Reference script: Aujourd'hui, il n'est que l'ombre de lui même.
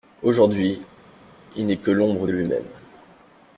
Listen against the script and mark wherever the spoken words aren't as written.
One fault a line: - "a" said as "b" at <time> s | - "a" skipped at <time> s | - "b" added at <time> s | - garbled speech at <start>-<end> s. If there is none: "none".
none